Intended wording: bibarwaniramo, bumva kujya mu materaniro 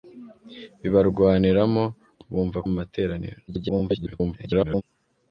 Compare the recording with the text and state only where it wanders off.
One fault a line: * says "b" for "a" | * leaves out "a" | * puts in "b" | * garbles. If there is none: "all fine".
* leaves out "kujya"
* garbles